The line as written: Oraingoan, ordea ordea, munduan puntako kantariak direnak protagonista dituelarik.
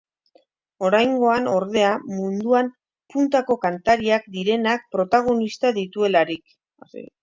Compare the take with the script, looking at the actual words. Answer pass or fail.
fail